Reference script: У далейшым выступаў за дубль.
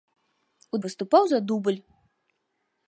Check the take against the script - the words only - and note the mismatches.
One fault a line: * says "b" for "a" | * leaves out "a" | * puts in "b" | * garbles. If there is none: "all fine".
* leaves out "далейшым"